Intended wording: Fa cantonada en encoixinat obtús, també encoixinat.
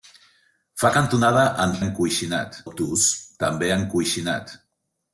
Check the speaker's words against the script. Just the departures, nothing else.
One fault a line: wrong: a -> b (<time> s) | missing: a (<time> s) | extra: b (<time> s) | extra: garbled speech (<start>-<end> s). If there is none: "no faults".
no faults